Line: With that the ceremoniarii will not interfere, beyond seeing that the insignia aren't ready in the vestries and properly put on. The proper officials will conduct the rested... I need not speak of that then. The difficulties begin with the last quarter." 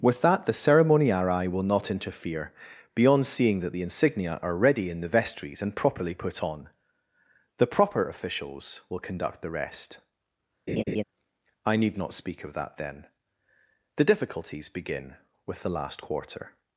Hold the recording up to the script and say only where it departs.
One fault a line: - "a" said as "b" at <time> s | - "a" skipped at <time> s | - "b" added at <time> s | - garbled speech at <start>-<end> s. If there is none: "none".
- "aren't" said as "are" at 4.4 s
- "rested" said as "rest" at 9.5 s